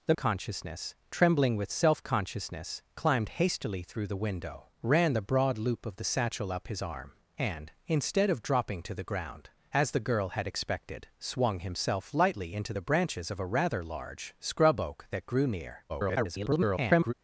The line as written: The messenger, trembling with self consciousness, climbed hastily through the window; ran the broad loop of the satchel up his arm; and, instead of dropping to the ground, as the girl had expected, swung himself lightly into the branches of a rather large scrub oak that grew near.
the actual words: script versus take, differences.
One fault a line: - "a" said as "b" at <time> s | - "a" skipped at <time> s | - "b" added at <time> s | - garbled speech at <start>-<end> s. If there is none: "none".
- "messenger" said as "consciousness" at 0.2 s
- garbled speech at 15.9-17.1 s